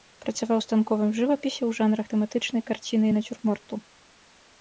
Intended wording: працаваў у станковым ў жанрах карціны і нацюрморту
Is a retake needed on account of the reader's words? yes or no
yes